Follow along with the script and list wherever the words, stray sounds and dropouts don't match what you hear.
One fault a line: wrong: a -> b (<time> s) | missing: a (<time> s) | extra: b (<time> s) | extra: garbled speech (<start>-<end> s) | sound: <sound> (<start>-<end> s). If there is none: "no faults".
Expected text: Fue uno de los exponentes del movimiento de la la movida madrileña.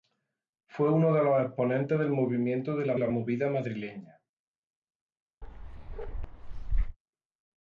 sound: bark (5.4-7.0 s)